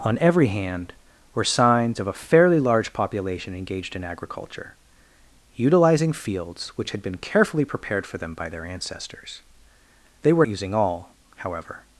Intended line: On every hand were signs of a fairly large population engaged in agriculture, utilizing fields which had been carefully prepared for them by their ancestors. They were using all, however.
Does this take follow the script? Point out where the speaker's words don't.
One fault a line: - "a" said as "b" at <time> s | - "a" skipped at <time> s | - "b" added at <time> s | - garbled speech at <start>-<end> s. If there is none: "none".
none